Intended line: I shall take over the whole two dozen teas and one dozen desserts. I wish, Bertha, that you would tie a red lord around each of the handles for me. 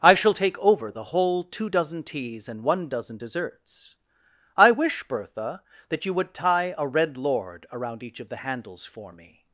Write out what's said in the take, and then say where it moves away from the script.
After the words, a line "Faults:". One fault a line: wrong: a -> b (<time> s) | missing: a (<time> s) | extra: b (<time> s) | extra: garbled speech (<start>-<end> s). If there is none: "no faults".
I shall take over the whole two dozen teas and one dozen desserts. I wish, Bertha, that you would tie a red lord around each of the handles for me.
Faults:
no faults